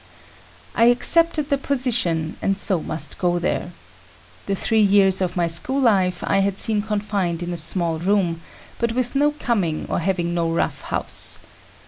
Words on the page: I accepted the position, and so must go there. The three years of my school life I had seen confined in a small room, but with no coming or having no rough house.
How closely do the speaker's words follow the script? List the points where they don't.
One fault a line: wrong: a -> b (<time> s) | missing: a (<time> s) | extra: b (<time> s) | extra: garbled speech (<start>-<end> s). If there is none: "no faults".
no faults